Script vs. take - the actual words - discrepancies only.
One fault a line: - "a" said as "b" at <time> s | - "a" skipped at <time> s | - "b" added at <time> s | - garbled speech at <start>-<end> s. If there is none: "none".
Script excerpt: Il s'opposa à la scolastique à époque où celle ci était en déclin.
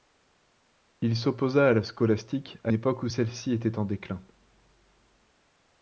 none